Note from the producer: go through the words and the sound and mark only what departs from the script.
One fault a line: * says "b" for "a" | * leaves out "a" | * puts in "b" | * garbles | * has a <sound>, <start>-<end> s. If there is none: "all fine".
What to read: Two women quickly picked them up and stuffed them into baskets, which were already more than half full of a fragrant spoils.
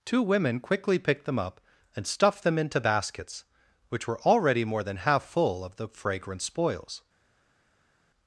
* says "the" for "a"